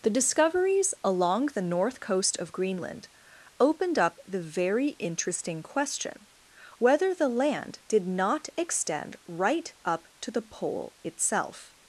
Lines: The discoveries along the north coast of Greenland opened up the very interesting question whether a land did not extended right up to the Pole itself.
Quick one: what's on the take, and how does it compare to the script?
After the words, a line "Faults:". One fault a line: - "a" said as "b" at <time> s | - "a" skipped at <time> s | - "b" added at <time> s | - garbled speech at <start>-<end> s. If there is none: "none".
The discoveries along the north coast of Greenland opened up the very interesting question whether the land did not extend right up to the Pole itself.
Faults:
- "a" said as "the" at 7.1 s
- "extended" said as "extend" at 8.6 s